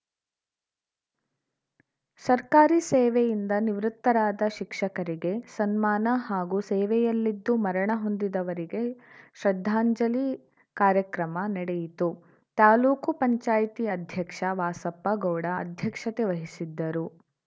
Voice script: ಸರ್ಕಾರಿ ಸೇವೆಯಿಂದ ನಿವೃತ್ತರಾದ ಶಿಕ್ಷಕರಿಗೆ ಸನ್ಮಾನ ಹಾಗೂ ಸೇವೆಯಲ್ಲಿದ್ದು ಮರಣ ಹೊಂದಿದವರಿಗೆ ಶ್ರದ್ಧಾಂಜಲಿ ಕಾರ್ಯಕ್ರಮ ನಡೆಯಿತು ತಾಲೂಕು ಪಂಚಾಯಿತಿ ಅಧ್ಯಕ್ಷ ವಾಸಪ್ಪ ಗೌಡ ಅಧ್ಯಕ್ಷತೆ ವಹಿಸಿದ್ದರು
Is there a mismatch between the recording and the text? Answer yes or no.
no